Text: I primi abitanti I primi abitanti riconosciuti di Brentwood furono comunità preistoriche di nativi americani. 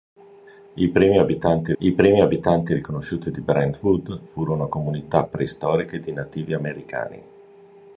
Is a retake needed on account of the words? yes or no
no